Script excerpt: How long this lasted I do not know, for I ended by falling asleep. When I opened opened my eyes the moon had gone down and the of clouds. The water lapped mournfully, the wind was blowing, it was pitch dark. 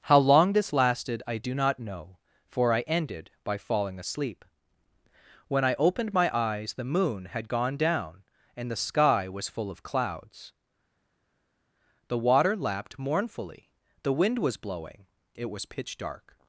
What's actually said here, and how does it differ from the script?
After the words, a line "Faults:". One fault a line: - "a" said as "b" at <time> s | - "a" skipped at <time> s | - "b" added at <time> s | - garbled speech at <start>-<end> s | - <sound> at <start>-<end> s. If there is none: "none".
How long this lasted I do not know, for I ended by falling asleep. When I opened my eyes the moon had gone down and the sky was full of clouds. The water lapped mournfully, the wind was blowing, it was pitch dark.
Faults:
- "opened" skipped at 6.1 s
- "sky was full" added at 8.8 s